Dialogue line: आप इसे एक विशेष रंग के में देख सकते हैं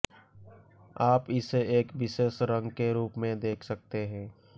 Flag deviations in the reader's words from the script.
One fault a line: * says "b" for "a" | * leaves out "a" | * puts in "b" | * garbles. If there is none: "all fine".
* puts in "रूप"